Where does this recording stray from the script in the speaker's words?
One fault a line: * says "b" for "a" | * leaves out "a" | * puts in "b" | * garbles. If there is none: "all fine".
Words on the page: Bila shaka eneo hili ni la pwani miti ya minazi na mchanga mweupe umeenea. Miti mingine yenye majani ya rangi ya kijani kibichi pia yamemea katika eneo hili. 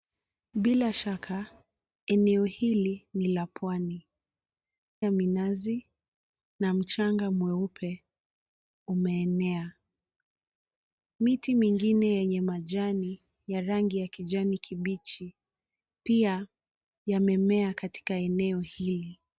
* leaves out "miti"